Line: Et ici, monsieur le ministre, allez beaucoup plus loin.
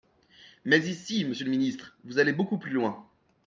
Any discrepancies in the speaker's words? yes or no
yes